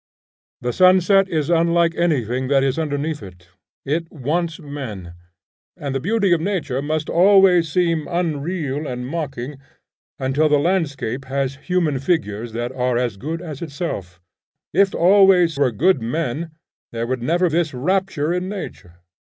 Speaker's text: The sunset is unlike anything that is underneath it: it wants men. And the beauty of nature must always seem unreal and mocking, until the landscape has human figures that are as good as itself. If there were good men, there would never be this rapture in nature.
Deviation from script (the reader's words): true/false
true